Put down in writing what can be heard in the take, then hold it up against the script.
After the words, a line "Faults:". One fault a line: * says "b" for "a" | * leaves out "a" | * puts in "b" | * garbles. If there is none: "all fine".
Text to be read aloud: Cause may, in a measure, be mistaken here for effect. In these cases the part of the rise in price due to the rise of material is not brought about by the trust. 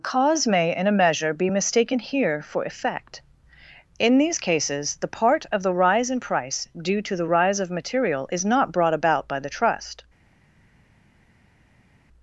Cause may, in a measure, be mistaken here for effect. In these cases the part of the rise in price due to the rise of material is not brought about by the trust.
Faults:
all fine